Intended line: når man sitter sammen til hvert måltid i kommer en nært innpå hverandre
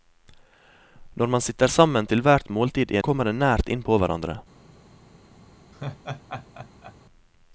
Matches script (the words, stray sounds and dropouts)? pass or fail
fail